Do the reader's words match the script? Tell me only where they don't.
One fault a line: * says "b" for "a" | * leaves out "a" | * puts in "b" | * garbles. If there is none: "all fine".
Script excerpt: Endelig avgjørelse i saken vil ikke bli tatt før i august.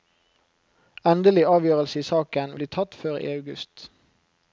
* leaves out "vil ikke"